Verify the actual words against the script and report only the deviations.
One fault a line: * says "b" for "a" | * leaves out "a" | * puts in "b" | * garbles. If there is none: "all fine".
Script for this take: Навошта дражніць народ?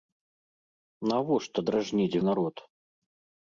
all fine